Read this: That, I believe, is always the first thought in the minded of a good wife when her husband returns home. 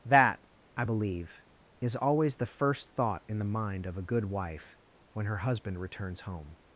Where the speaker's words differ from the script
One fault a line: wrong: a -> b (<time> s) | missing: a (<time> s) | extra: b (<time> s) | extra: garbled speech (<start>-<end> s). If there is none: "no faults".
wrong: minded -> mind (3.5 s)